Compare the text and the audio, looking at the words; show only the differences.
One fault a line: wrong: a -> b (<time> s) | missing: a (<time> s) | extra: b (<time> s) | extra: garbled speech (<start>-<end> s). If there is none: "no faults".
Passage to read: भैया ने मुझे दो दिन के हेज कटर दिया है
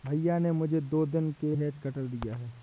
no faults